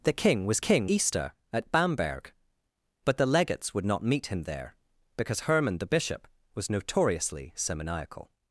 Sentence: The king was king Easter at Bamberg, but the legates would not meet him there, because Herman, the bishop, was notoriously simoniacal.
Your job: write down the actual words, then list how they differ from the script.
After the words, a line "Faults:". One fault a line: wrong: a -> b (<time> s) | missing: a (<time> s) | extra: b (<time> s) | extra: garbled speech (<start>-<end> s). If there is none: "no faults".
The king was king Easter at Bamberg, but the legates would not meet him there, because Herman, the bishop, was notoriously simoniacal.
Faults:
no faults